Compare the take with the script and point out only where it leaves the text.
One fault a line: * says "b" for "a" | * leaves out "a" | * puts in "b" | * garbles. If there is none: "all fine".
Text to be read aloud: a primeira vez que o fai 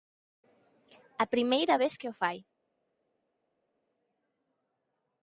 all fine